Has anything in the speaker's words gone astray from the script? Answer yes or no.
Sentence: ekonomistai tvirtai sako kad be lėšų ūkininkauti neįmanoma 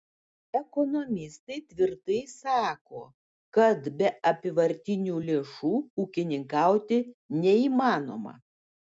yes